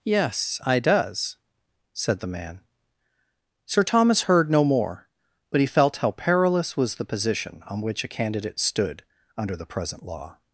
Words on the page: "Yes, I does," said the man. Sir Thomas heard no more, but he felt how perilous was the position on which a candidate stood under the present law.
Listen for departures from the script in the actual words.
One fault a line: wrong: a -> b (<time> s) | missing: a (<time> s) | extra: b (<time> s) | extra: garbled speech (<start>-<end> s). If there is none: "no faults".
no faults